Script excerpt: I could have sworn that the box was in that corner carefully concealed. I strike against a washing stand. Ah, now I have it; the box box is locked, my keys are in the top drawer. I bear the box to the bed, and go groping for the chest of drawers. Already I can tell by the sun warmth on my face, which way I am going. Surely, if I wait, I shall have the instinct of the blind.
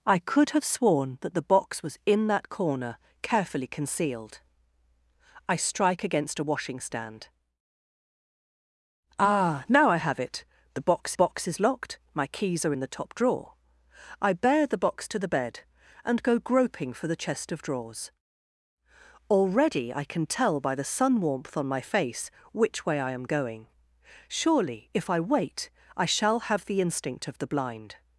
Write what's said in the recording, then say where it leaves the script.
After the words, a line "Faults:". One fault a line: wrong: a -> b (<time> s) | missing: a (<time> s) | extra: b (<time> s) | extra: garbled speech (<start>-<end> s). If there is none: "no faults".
I could have sworn that the box was in that corner carefully concealed. I strike against a washing stand. Ah, now I have it; the box box is locked, my keys are in the top drawer. I bear the box to the bed, and go groping for the chest of drawers. Already I can tell by the sun warmth on my face, which way I am going. Surely, if I wait, I shall have the instinct of the blind.
Faults:
no faults